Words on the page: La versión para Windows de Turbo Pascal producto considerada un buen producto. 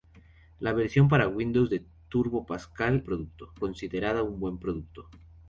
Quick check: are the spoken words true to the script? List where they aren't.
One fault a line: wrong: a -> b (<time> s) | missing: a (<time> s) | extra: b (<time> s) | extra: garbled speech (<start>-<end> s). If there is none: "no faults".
no faults